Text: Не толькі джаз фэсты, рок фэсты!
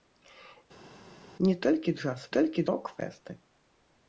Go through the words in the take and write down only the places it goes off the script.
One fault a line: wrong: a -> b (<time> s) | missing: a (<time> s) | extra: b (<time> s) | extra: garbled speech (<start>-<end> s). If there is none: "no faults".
wrong: фэсты -> толькі (2.4 s)